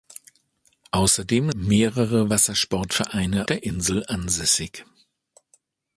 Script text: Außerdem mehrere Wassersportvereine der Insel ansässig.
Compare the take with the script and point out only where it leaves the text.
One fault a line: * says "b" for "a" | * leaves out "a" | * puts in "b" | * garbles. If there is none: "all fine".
all fine